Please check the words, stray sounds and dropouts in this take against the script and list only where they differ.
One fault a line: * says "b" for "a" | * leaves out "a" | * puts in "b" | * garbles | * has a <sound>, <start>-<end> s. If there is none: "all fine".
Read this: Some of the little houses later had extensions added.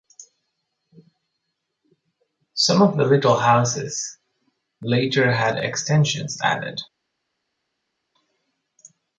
all fine